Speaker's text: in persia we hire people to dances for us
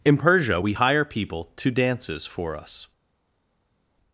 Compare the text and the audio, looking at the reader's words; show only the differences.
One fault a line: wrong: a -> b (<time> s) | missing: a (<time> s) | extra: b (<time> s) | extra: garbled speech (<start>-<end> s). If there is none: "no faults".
no faults